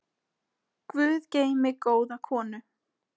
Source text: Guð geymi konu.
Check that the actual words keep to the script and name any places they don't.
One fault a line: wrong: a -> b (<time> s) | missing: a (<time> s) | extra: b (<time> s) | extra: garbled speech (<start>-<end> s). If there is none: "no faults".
extra: góða (1.9 s)